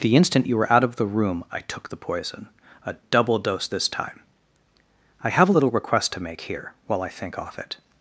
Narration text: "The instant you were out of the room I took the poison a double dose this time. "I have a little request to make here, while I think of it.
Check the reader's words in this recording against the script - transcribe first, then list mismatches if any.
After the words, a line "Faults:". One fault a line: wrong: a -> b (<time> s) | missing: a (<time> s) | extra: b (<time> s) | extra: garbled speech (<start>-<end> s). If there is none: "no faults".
"The instant you were out of the room I took the poison a double dose this time. "I have a little request to make here, while I think off it.
Faults:
wrong: of -> off (7.4 s)